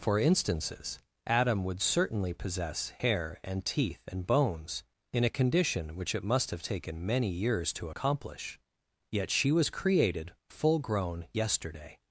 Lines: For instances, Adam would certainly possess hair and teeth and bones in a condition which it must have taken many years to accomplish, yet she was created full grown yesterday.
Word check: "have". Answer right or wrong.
right